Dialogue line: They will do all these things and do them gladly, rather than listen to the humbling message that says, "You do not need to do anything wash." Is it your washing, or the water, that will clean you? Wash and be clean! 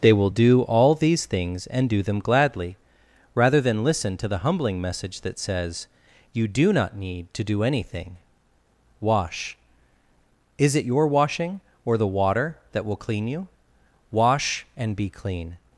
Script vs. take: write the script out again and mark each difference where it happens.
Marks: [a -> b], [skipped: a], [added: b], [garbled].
They will do all these things and do them gladly, rather than listen to the humbling message that says, "You do not need to do anything wash." Is it your washing, or the water, that will clean you? Wash and be clean!